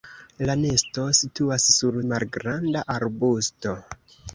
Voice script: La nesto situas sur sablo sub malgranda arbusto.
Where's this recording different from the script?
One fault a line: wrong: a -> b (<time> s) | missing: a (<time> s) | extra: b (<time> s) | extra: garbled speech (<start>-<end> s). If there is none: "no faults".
missing: sablo sub (2.0 s)